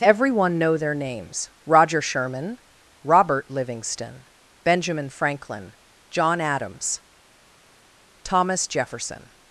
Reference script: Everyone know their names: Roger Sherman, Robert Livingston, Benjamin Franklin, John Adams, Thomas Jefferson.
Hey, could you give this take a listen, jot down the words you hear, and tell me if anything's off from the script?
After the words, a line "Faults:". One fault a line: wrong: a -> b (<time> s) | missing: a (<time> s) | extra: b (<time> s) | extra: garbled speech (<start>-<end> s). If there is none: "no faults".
Everyone know their names: Roger Sherman, Robert Livingston, Benjamin Franklin, John Adams, Thomas Jefferson.
Faults:
no faults